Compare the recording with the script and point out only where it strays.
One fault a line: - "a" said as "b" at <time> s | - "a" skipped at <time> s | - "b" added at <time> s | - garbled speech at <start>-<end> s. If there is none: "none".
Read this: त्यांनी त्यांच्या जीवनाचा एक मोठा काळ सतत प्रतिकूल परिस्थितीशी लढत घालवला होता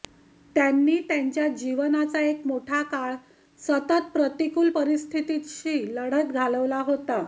none